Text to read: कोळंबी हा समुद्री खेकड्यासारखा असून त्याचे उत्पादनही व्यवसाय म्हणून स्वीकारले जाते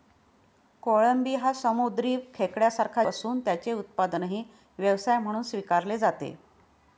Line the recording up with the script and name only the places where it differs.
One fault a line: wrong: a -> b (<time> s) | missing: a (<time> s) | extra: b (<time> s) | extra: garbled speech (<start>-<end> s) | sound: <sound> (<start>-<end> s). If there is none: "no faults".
no faults